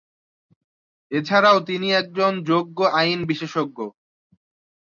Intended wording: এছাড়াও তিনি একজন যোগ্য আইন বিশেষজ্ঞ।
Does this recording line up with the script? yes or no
yes